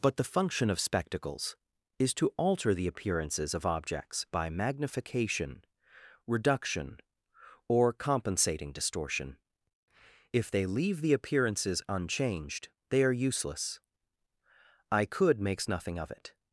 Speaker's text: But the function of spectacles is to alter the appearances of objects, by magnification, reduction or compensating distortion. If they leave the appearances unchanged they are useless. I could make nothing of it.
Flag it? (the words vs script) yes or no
yes